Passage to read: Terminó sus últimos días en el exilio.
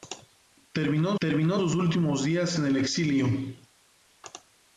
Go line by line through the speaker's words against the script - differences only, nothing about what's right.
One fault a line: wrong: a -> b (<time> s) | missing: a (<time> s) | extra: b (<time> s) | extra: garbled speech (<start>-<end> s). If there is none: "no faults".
extra: terminó (1.2 s)